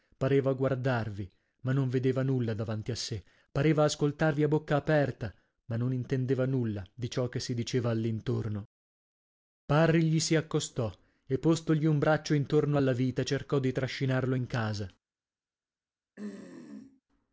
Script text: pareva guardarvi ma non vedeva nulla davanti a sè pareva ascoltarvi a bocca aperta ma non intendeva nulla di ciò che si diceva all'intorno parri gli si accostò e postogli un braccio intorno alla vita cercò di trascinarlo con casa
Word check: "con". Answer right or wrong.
wrong